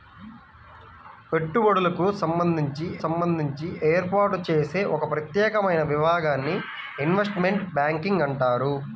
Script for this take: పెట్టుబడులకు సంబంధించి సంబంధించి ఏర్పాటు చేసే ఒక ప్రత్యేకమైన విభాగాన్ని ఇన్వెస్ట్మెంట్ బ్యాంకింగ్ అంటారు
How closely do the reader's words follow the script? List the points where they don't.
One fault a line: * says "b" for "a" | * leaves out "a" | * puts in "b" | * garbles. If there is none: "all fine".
all fine